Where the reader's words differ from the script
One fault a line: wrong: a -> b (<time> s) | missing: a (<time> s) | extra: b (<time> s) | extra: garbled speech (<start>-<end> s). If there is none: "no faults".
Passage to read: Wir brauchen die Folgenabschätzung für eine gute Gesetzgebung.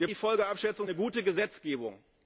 missing: brauchen (0.1 s)
missing: für (0.9 s)